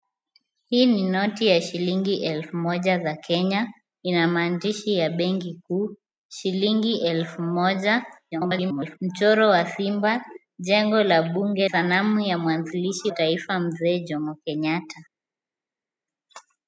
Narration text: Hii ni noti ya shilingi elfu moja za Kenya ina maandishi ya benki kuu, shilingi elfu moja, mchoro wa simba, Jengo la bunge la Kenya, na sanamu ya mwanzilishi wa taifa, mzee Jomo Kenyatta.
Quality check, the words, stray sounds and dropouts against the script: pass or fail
fail